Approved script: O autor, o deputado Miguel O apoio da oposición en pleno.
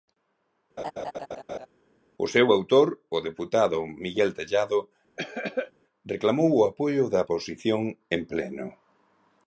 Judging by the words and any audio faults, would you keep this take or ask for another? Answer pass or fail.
fail